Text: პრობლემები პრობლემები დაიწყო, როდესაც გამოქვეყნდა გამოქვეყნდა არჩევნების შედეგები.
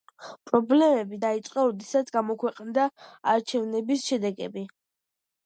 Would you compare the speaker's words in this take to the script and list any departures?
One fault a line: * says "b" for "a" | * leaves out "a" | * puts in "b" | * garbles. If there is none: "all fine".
* leaves out "პრობლემები"
* leaves out "გამოქვეყნდა"